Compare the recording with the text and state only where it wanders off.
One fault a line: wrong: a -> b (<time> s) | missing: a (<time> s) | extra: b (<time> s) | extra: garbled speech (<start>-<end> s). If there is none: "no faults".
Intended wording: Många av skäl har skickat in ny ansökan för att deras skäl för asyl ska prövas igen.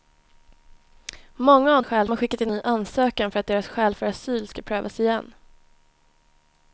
no faults